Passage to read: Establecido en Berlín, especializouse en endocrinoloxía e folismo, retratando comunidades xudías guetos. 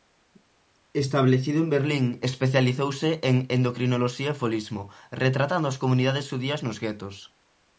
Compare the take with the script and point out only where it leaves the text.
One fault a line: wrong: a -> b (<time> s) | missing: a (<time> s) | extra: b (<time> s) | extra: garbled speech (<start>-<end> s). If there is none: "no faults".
extra: as (5.7 s)
extra: nos (6.7 s)